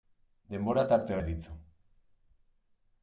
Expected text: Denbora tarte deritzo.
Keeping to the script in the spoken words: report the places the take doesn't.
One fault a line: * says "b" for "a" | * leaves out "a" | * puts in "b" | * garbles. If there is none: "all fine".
all fine